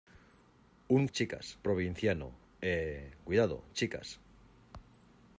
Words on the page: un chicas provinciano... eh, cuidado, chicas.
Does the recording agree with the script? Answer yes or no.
yes